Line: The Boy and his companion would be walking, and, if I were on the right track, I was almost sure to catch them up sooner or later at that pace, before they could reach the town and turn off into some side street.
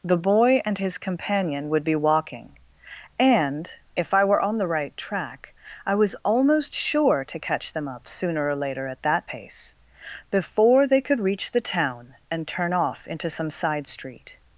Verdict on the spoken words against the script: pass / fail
pass